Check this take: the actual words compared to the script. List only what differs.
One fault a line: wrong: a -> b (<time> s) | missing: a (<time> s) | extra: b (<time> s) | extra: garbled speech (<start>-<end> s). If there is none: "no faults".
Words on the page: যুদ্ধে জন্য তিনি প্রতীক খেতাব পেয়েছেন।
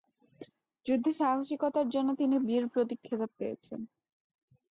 extra: সাহসিকতার (1.2 s)
extra: বীর (2.5 s)